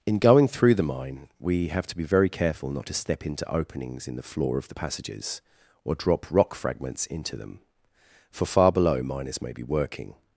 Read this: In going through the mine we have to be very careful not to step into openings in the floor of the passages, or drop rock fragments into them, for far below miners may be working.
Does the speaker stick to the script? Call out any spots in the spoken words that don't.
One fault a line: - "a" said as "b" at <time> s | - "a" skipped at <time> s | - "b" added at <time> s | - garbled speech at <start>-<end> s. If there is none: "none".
none